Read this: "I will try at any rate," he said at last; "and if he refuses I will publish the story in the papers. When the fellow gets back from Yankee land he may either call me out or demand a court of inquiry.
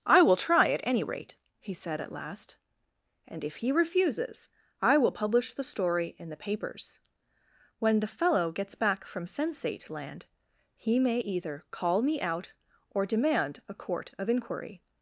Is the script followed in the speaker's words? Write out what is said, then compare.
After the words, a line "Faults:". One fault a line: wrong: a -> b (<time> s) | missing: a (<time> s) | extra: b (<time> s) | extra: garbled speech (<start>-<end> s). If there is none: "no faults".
"I will try at any rate," he said at last; "and if he refuses I will publish the story in the papers. When the fellow gets back from Sensate land he may either call me out or demand a court of inquiry.
Faults:
wrong: Yankee -> Sensate (9.3 s)